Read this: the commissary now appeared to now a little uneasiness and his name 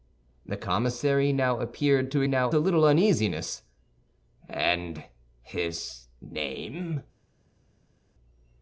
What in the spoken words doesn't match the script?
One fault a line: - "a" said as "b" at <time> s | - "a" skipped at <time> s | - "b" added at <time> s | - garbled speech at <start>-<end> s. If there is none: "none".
none